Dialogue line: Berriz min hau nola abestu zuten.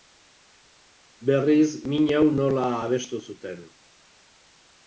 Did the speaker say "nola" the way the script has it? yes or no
yes